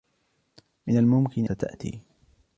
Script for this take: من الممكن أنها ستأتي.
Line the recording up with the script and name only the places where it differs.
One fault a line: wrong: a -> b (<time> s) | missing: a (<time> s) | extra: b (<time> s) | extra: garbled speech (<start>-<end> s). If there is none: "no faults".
missing: أنها (1.4 s)